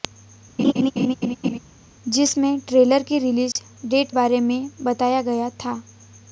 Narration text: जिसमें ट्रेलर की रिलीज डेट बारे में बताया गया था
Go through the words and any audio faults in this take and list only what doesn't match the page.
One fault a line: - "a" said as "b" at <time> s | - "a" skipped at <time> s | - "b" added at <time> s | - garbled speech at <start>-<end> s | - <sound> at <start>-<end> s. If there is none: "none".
- laugh at 0.6-1.6 s
- dropout at 3.5-3.6 s